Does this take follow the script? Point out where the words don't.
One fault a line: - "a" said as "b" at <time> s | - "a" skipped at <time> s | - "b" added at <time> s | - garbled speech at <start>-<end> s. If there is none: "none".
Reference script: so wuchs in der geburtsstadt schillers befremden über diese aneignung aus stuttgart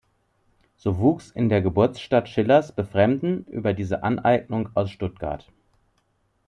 none